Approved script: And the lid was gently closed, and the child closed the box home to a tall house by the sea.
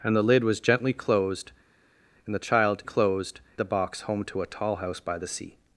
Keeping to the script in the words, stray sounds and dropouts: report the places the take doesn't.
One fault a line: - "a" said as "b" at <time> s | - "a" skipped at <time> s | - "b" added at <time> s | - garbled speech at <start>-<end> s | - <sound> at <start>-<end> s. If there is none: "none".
none